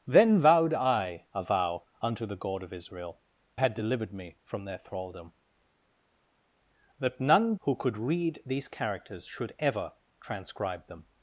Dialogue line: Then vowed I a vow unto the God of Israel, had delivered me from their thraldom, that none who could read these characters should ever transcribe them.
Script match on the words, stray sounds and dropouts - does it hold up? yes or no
yes